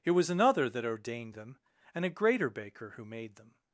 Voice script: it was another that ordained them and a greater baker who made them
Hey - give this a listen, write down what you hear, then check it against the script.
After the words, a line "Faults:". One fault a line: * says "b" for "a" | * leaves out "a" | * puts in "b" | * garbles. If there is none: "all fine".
it was another that ordained them and a greater baker who made them
Faults:
all fine